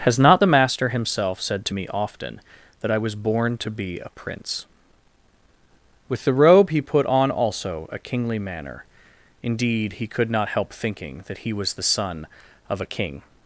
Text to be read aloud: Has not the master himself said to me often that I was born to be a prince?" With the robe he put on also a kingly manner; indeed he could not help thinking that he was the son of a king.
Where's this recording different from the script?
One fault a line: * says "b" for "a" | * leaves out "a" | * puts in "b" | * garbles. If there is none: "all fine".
all fine